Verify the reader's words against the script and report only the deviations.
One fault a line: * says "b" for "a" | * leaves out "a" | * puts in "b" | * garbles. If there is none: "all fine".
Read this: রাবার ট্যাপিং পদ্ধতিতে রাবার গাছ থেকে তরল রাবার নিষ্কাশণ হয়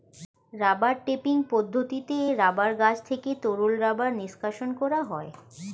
* puts in "করা"